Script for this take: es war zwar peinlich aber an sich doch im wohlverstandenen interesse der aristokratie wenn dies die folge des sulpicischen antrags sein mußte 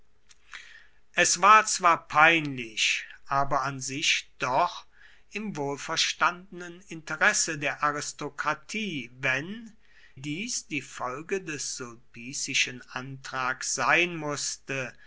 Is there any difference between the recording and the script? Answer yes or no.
no